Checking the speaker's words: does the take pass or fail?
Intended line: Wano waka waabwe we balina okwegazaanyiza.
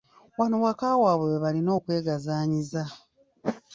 pass